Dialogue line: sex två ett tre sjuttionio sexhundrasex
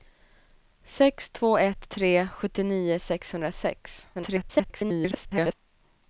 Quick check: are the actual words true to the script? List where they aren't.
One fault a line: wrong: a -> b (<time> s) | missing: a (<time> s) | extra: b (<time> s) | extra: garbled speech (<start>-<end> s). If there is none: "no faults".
extra: garbled speech (4.1-5.5 s)